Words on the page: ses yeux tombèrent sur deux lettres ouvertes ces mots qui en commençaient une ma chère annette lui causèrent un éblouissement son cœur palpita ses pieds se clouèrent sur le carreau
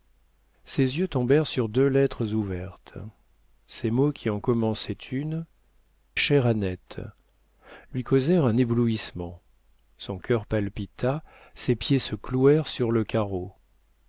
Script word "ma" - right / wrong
wrong